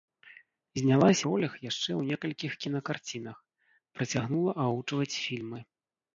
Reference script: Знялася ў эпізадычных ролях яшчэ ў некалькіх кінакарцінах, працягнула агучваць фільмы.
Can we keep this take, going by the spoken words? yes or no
no